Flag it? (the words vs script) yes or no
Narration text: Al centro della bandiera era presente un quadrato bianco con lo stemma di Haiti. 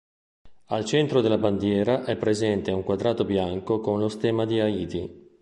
yes